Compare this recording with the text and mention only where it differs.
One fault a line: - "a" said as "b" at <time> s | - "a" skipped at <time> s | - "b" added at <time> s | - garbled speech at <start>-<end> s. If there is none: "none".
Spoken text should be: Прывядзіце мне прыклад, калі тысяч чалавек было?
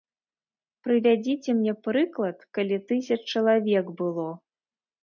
none